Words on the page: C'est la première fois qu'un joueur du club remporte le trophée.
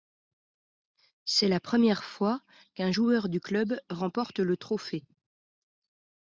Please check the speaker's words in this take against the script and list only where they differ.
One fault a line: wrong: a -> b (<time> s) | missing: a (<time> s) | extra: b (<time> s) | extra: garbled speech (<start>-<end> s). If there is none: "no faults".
no faults